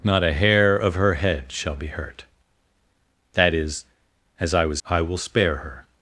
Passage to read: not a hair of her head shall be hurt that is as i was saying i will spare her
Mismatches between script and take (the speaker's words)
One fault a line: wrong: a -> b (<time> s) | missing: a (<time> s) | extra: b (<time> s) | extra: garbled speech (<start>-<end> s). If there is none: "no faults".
missing: saying (4.8 s)